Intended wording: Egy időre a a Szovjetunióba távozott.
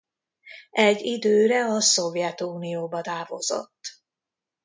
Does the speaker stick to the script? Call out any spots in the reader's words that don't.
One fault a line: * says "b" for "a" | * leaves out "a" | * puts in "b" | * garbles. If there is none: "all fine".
* leaves out "a"